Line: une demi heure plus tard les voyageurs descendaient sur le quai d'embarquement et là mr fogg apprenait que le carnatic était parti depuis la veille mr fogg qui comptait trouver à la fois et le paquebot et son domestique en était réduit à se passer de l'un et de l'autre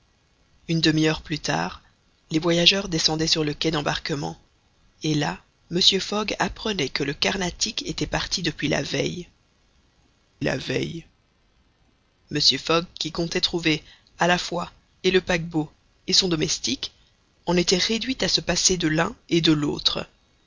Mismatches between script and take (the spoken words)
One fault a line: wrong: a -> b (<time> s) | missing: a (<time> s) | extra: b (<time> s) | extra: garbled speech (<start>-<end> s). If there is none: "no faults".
extra: la veille (10.4 s)